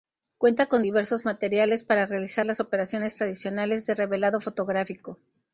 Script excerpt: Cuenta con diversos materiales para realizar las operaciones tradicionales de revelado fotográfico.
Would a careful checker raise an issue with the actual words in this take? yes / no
no